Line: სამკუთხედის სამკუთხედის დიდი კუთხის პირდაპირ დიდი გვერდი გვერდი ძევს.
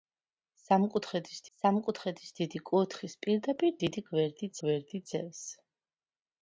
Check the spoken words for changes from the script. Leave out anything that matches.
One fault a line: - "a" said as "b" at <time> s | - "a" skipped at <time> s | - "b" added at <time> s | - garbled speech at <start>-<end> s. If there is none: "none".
none